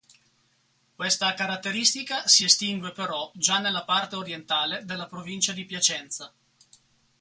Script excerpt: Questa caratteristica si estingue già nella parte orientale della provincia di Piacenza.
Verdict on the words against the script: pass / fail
fail